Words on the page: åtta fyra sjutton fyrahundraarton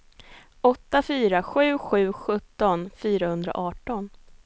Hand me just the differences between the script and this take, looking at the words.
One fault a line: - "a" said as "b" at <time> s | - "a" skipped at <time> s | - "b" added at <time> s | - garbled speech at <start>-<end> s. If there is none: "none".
- "sju sju" added at 1.4 s